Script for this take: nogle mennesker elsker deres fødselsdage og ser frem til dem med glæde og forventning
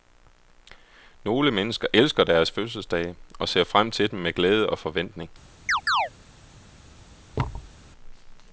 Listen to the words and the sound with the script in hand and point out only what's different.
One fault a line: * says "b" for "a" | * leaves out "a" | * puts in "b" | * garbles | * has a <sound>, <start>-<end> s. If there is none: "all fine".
* has a chirp, 5.7-6.1 s
* has a thud, 7.3-7.7 s